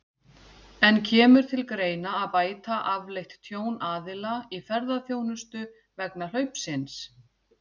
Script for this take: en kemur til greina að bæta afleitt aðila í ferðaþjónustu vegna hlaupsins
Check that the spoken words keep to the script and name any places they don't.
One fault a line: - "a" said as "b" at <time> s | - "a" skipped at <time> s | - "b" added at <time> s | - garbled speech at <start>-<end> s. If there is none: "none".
- "tjón" added at 3.5 s